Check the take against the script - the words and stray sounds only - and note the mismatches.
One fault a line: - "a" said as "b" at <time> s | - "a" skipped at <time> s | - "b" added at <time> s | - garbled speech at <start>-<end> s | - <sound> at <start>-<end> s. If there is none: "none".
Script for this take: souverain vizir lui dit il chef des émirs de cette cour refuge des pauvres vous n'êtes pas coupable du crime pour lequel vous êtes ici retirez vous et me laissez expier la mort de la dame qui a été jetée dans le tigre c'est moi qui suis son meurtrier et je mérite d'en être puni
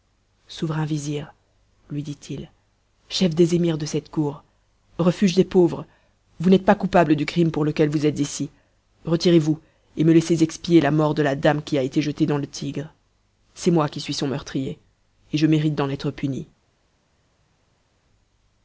none